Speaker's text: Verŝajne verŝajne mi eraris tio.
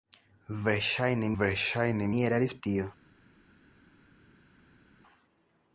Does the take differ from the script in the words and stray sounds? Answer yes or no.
no